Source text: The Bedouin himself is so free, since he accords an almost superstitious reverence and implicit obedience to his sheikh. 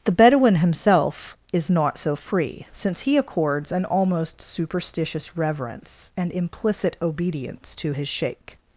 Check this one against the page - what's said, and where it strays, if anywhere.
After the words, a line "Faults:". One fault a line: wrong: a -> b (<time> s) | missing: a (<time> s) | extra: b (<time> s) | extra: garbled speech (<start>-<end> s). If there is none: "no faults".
The Bedouin himself is not so free, since he accords an almost superstitious reverence and implicit obedience to his sheikh.
Faults:
extra: not (1.7 s)